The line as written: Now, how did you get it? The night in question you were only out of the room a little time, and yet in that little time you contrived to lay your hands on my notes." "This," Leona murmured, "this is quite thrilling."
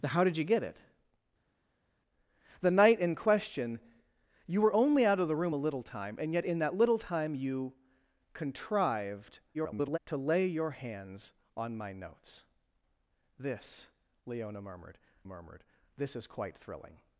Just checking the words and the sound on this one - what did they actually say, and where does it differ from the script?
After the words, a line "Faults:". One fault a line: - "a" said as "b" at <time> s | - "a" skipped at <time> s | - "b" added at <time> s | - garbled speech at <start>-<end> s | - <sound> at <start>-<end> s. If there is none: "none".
Now, how did you get it? The night in question you were only out of the room a little time, and yet in that little time you contrived [garbled] to lay your hands on my notes." "This," Leona murmured murmured, "this is quite thrilling."
Faults:
- garbled speech at 9.5-10.0 s
- "murmured" added at 15.3 s